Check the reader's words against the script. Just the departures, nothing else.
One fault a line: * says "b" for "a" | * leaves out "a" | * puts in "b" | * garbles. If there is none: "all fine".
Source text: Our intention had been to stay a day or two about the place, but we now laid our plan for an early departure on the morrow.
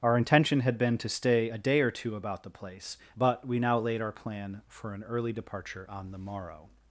all fine